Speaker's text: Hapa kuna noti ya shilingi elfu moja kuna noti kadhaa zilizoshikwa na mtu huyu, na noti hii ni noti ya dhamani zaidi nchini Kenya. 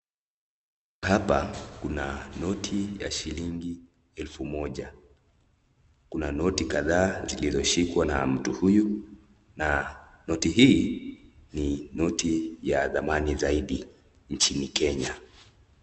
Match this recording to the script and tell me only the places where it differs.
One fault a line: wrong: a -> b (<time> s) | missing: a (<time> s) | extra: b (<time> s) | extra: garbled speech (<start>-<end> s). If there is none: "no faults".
no faults